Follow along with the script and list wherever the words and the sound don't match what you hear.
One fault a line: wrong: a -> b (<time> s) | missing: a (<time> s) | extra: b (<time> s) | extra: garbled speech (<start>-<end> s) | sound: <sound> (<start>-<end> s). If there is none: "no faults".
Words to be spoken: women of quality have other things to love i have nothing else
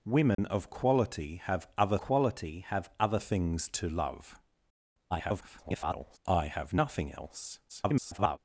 sound: dropout (0.3-0.4 s)
extra: quality have other (2.0 s)
extra: garbled speech (5.1-6.2 s)
extra: garbled speech (7.7-8.4 s)